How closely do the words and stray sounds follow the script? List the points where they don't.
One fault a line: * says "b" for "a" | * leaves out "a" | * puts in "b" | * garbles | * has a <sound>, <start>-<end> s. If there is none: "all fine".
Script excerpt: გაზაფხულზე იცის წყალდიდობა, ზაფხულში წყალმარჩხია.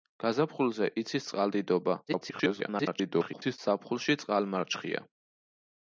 * garbles